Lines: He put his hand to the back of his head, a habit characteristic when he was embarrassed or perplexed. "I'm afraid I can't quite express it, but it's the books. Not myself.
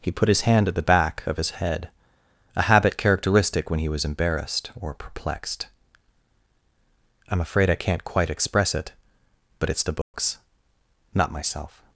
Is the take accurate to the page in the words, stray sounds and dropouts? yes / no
no